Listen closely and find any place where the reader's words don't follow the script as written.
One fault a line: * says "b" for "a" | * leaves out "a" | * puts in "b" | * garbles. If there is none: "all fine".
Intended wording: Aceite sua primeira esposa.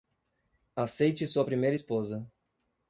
all fine